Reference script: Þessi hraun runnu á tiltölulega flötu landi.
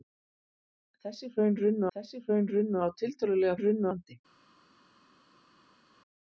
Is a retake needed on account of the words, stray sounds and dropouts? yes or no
yes